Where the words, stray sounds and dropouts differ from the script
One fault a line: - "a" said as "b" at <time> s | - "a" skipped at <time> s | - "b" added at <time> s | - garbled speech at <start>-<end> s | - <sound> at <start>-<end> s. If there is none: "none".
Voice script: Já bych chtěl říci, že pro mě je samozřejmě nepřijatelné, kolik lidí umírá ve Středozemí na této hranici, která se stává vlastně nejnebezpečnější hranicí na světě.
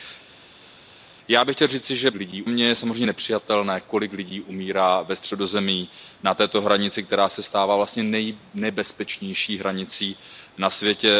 - "pro" said as "lidí" at 2.1 s